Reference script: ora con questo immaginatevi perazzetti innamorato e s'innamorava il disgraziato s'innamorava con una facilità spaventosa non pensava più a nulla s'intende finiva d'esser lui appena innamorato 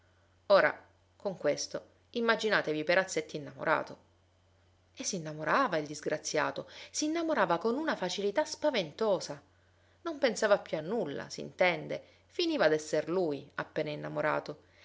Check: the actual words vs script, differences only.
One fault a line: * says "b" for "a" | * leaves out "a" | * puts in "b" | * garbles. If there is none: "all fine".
all fine